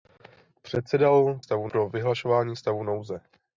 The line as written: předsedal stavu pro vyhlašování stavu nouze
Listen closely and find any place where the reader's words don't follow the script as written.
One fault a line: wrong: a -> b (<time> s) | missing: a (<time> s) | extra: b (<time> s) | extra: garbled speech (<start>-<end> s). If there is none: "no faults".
no faults